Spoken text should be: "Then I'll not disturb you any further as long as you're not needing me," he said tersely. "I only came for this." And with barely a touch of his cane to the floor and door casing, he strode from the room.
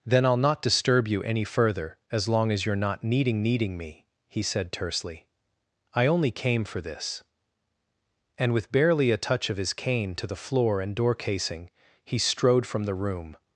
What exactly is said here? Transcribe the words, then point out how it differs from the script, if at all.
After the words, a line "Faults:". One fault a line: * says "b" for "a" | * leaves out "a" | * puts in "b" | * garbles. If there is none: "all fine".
"Then I'll not disturb you any further as long as you're not needing needing me," he said tersely. "I only came for this." And with barely a touch of his cane to the floor and door casing, he strode from the room.
Faults:
* puts in "needing"